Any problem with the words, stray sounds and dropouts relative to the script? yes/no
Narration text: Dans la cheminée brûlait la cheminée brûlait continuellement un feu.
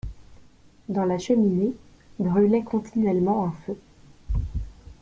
yes